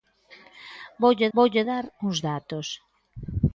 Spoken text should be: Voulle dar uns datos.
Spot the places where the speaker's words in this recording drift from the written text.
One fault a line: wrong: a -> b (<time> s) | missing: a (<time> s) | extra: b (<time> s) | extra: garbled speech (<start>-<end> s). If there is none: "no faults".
extra: voulle (1.4 s)